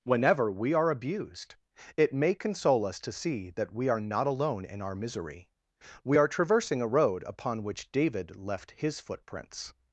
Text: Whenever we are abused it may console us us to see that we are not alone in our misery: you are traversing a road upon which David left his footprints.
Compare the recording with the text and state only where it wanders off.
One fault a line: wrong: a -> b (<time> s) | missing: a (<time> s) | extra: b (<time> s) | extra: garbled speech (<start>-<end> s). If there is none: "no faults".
missing: us (3.0 s)
wrong: you -> we (6.0 s)